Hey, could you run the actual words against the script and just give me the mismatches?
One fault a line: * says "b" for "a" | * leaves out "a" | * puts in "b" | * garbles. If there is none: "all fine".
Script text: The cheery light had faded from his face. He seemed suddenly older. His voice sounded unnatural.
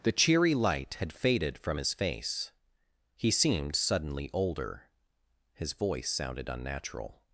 all fine